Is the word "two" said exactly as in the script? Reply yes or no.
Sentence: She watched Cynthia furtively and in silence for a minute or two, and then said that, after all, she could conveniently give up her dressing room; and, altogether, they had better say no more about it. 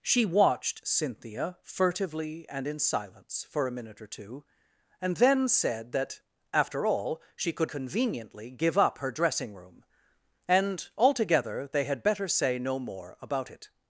yes